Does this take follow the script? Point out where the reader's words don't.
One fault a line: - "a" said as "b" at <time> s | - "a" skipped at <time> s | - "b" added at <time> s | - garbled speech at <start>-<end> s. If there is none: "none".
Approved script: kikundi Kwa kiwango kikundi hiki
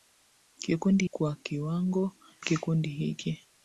none